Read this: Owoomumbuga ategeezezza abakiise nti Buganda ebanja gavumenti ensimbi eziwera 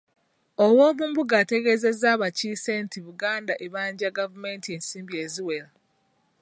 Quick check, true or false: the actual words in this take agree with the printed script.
true